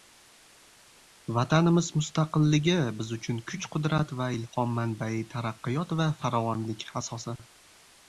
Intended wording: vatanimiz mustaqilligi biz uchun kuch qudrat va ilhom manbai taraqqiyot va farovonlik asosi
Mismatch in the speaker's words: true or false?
false